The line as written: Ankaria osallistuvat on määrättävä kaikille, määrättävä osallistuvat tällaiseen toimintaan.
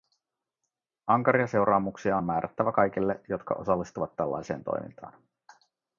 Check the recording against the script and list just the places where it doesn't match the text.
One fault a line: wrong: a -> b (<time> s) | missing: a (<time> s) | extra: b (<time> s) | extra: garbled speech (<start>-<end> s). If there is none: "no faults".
wrong: osallistuvat -> seuraamuksia (1.5 s)
wrong: määrättävä -> jotka (3.3 s)